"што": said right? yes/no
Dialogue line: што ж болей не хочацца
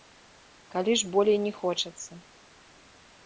no